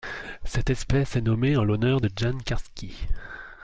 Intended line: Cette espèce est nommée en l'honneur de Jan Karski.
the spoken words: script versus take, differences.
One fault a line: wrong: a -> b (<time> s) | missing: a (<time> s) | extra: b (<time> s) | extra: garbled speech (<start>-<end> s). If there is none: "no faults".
no faults